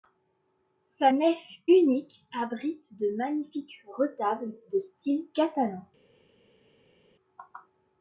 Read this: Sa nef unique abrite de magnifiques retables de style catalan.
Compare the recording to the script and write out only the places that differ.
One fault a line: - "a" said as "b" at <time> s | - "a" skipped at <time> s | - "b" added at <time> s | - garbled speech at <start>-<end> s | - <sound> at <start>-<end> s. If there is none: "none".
none